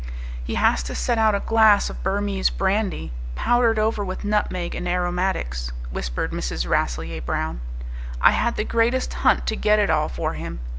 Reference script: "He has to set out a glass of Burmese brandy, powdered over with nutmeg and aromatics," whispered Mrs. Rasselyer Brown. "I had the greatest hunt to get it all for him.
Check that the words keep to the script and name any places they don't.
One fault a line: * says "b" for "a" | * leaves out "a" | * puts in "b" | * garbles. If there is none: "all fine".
all fine